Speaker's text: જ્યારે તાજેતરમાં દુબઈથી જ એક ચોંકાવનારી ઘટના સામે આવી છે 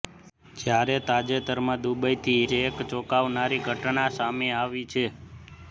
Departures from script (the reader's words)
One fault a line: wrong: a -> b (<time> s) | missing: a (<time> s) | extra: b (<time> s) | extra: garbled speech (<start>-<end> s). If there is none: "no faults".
no faults